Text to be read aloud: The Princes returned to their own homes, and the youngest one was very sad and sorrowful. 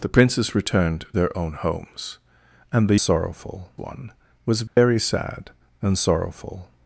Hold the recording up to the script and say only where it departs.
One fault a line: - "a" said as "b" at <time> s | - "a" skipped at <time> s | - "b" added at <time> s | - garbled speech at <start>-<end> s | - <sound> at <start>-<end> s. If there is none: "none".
- "to" skipped at 1.1 s
- "youngest" said as "sorrowful" at 3.0 s
- dropout at 4.7-4.8 s